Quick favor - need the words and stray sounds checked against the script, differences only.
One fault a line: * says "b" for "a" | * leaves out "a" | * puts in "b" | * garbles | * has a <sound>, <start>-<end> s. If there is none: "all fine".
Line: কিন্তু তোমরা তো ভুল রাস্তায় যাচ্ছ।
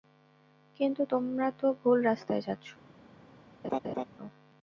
* has a laugh, 3.6-4.0 s